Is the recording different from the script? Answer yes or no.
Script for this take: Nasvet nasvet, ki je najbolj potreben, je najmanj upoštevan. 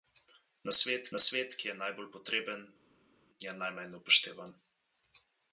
no